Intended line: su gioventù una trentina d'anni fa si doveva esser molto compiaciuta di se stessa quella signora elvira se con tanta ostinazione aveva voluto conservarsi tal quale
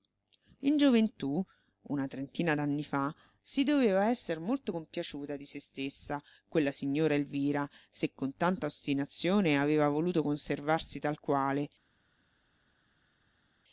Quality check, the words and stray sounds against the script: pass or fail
fail